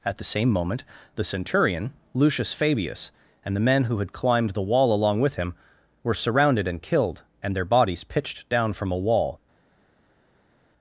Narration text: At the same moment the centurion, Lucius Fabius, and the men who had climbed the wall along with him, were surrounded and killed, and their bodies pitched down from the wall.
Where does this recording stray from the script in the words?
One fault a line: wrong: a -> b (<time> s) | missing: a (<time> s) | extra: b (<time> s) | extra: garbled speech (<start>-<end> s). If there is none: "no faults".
wrong: the -> a (8.9 s)